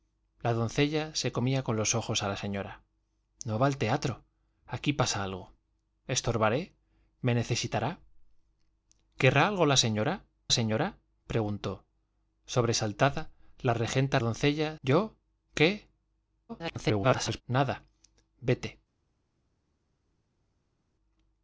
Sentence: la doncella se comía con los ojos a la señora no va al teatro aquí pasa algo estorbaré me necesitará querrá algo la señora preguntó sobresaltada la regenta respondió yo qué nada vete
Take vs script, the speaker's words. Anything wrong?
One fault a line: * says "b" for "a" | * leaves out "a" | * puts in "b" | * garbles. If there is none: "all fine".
* puts in "señora"
* says "doncella" for "respondió"
* garbles